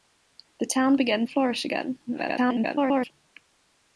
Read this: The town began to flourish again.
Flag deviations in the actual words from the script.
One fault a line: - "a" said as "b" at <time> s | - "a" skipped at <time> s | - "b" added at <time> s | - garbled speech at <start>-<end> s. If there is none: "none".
- "to" skipped at 1.3 s
- garbled speech at 2.1-3.1 s